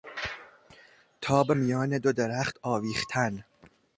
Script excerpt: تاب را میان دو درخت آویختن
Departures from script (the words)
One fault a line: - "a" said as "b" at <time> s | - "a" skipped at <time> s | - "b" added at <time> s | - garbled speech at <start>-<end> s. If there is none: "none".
- "را" skipped at 1.5 s